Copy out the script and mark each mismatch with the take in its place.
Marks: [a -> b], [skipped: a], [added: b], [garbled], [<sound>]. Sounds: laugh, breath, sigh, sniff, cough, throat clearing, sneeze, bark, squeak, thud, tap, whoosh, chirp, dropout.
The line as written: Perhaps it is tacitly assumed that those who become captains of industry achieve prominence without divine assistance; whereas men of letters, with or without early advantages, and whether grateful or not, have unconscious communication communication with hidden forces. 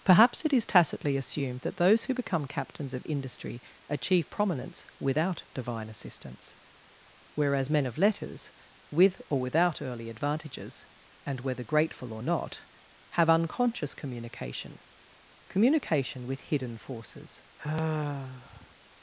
Perhaps it is tacitly assumed that those who become captains of industry achieve prominence without divine assistance; whereas men of letters, with or without early advantages, and whether grateful or not, have unconscious communication communication with hidden forces. [sigh]